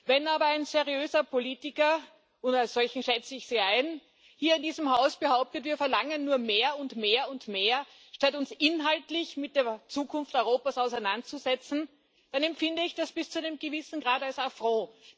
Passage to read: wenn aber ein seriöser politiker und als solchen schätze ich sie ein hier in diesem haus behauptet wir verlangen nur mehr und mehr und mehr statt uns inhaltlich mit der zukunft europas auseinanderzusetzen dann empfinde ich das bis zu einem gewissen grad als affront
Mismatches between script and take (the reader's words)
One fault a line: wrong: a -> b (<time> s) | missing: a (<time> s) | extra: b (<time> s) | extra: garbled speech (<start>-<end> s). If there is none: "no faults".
no faults